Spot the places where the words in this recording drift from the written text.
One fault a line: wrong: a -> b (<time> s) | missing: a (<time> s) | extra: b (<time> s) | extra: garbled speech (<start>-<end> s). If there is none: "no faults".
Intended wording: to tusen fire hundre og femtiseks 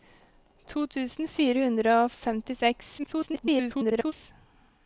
extra: garbled speech (3.0-4.1 s)